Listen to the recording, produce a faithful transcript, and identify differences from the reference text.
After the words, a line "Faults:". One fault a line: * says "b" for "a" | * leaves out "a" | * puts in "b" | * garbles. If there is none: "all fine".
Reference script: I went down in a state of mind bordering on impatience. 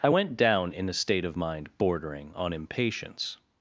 I went down in a state of mind bordering on impatience.
Faults:
all fine